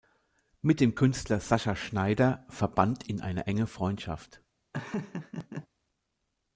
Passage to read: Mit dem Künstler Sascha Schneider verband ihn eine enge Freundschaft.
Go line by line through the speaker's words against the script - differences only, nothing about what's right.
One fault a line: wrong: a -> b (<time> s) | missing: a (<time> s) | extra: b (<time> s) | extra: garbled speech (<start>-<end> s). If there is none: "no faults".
no faults